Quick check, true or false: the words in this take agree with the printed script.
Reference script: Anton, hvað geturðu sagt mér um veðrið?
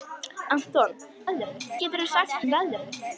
false